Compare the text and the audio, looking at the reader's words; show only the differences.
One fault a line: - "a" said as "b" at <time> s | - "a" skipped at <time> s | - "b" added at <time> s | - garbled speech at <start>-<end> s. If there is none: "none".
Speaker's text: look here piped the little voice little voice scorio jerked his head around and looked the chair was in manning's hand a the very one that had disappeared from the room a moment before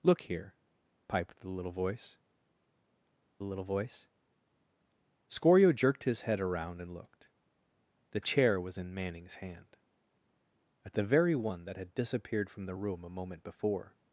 none